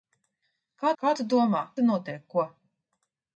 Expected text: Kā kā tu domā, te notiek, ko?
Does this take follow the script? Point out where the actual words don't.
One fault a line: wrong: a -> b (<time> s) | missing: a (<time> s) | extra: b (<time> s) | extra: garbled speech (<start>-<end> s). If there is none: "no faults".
no faults